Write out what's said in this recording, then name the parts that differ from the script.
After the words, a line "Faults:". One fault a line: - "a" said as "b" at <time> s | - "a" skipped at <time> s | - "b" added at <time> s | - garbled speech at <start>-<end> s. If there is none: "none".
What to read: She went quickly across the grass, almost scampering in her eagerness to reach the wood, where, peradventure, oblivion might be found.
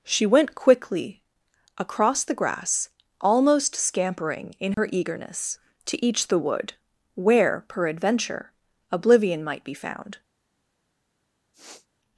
She went quickly across the grass, almost scampering in her eagerness to each the wood, where, peradventure, oblivion might be found.
Faults:
- "reach" said as "each" at 6.0 s